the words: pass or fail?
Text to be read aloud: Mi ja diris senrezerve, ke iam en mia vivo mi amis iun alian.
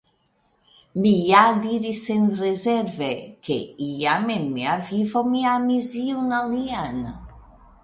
pass